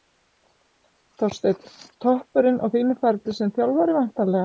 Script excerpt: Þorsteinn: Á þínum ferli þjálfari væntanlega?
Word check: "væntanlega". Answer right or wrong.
right